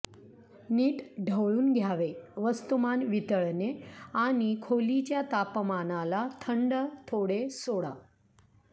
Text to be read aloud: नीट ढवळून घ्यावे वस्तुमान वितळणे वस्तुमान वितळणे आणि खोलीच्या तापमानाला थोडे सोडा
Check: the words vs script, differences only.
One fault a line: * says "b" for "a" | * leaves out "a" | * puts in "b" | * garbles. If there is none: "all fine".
* leaves out "वस्तुमान वितळणे"
* puts in "थंड"